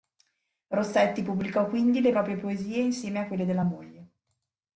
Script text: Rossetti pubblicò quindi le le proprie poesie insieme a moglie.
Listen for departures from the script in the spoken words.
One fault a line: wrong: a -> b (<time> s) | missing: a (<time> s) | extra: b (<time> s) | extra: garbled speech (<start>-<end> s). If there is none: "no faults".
missing: le (2.1 s)
extra: quelle della (3.3 s)